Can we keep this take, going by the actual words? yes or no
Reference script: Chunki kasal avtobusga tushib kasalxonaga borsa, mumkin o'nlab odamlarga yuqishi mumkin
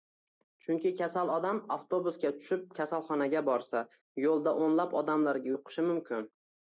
no